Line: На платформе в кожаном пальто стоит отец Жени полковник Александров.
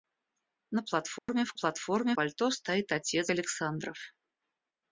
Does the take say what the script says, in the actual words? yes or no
no